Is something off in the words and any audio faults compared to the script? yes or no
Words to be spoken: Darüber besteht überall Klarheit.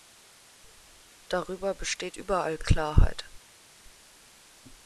no